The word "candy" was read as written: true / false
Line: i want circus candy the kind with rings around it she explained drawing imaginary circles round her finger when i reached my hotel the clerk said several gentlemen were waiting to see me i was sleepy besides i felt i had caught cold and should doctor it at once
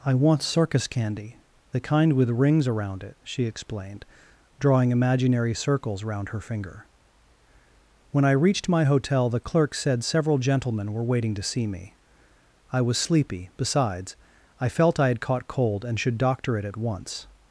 true